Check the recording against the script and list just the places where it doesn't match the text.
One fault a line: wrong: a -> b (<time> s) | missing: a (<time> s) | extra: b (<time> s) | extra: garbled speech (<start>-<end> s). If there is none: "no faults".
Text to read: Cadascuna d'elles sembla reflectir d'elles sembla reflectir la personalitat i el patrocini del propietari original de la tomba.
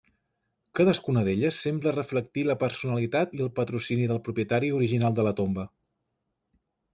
missing: d'elles sembla reflectir (2.4 s)